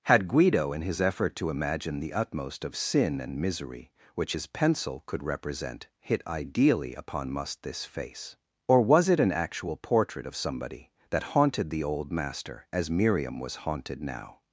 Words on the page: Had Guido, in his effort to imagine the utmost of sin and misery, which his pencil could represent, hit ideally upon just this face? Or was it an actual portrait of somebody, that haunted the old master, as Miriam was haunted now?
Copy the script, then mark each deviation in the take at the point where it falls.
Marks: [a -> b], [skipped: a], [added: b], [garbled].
Had Guido, in his effort to imagine the utmost of sin and misery, which his pencil could represent, hit ideally upon [just -> must] this face? Or was it an actual portrait of somebody, that haunted the old master, as Miriam was haunted now?